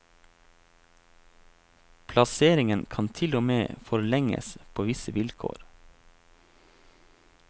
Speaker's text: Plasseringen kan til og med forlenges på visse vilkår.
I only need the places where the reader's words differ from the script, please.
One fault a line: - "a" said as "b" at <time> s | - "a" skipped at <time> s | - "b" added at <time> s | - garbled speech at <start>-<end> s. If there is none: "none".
none